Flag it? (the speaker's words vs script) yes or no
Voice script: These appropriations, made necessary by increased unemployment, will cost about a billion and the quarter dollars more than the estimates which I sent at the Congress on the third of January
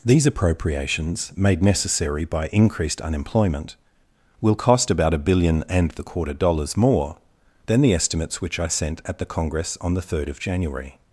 no